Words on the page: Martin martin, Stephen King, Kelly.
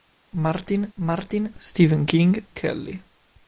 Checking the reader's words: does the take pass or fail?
pass